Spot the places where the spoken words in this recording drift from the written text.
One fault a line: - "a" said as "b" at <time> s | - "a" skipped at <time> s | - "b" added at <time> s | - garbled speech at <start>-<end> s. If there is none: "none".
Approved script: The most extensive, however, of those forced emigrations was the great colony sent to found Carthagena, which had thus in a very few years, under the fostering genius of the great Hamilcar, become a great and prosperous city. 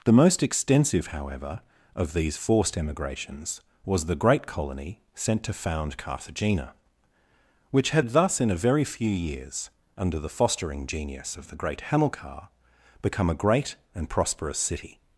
- "those" said as "these" at 2.1 s